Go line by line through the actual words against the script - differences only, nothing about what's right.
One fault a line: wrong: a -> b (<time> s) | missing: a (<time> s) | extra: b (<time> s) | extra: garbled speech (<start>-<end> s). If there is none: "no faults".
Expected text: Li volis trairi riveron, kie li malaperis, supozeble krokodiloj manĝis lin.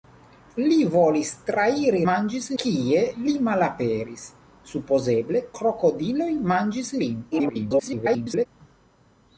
wrong: riveron -> manĝis (2.1 s)
extra: garbled speech (7.3-8.5 s)